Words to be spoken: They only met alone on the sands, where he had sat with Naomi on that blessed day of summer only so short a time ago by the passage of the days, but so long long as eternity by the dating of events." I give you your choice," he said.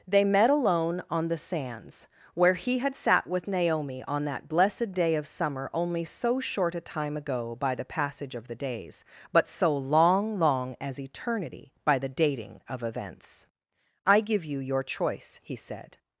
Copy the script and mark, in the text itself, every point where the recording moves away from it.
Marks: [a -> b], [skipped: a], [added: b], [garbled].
They [skipped: only] met alone on the sands, where he had sat with Naomi on that blessed day of summer only so short a time ago by the passage of the days, but so long long as eternity by the dating of events." I give you your choice," he said.